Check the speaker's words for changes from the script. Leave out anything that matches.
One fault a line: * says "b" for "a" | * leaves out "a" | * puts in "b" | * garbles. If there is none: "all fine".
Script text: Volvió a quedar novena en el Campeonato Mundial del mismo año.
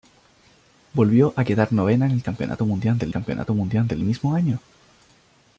* puts in "Campeonato Mundial del"